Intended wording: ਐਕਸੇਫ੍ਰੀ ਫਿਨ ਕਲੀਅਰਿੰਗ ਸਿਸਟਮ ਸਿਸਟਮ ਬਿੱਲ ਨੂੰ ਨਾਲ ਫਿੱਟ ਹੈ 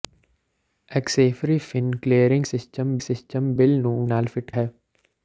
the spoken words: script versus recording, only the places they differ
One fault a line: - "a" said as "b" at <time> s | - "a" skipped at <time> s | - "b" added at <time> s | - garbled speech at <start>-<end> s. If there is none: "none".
none